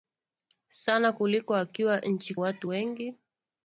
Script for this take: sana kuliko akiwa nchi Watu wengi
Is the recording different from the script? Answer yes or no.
no